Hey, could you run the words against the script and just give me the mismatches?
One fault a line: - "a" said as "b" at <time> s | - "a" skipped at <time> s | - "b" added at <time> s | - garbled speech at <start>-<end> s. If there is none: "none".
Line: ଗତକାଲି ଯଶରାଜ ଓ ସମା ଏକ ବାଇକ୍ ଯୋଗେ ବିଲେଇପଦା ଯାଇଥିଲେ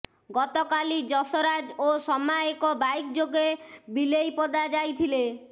none